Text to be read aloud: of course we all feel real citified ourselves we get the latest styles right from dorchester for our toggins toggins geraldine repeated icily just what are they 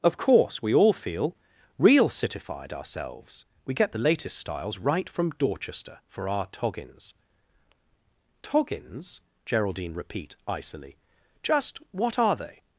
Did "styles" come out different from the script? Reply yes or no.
no